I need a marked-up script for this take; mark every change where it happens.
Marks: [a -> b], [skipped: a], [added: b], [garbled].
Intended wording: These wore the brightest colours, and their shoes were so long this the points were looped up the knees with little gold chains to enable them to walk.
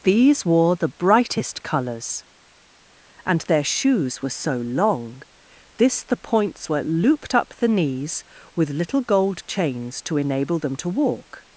These wore the brightest colours, and their shoes were so long this the points were looped up the knees with little gold chains to enable them to walk.